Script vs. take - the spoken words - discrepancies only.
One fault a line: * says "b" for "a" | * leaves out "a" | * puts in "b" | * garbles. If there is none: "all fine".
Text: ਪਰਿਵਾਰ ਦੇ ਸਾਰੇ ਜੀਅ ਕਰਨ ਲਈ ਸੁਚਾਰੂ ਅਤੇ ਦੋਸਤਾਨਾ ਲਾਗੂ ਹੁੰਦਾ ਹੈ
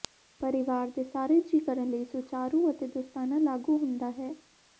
all fine